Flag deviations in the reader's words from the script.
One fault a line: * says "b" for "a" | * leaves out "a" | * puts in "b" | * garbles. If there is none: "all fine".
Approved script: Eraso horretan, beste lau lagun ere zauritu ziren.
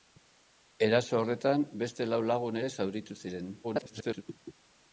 * garbles